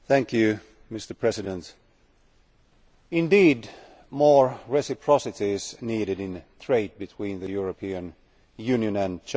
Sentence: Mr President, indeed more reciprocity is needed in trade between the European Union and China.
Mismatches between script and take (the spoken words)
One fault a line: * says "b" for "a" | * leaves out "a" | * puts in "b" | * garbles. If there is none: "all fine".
all fine